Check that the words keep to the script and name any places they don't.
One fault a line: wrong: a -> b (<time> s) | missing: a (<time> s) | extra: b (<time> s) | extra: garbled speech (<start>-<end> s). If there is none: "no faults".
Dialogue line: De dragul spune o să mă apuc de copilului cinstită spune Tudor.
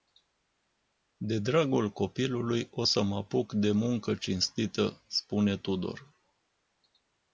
wrong: spune -> copilului (1.9 s)
wrong: copilului -> muncă (3.7 s)